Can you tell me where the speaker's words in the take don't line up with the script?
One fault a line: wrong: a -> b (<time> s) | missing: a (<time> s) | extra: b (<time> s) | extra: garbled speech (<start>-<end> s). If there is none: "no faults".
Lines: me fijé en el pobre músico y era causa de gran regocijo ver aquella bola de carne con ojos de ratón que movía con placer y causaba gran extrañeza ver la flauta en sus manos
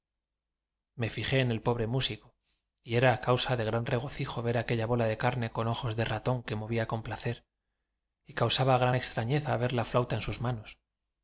no faults